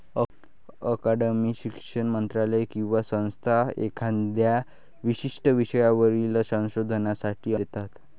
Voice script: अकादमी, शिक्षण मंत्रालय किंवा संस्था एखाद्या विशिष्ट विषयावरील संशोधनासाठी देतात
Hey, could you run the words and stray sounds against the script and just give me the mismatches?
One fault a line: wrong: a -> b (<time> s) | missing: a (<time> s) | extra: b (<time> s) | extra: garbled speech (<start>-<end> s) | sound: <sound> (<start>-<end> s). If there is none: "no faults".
no faults